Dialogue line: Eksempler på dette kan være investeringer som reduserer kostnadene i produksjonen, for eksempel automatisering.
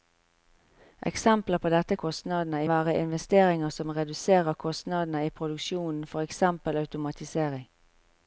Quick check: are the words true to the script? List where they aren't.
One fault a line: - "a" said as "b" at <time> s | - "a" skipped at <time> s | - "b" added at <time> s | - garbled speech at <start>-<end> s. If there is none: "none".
- "kan" said as "kostnadene" at 2.0 s